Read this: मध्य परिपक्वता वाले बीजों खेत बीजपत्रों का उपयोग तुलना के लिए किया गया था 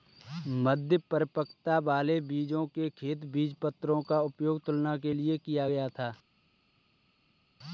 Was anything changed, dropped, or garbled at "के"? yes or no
no